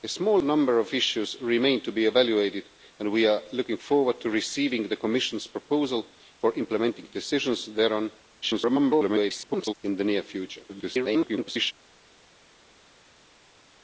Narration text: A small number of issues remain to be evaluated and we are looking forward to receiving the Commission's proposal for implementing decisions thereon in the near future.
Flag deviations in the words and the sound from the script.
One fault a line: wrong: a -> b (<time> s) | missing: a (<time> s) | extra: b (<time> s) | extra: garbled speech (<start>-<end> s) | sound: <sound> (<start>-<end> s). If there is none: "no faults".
extra: garbled speech (8.4-9.7 s)
extra: garbled speech (10.7-11.7 s)